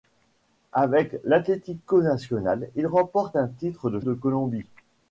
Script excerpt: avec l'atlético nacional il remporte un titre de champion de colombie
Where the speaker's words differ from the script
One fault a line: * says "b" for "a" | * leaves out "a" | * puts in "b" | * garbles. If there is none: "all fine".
* leaves out "champion"